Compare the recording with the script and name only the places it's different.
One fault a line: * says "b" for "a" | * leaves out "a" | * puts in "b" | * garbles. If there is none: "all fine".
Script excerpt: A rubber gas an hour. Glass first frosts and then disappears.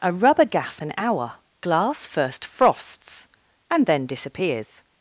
all fine